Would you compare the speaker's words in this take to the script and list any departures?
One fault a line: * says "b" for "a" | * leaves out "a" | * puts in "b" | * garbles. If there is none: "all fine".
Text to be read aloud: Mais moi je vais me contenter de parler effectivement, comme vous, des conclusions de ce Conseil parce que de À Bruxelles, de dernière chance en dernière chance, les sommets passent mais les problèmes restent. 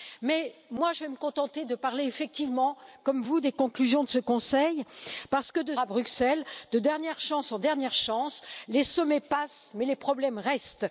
all fine